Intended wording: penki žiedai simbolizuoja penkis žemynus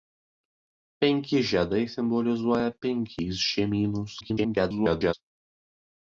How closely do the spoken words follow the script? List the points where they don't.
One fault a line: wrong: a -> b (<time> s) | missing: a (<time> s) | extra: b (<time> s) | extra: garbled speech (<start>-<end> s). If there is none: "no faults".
extra: garbled speech (4.2-5.1 s)